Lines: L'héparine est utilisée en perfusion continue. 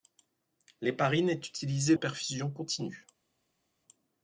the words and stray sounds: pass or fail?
pass